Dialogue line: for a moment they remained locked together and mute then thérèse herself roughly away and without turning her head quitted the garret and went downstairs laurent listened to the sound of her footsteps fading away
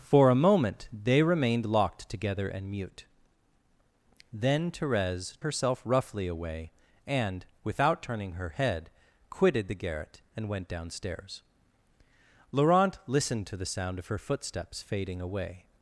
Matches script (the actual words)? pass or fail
pass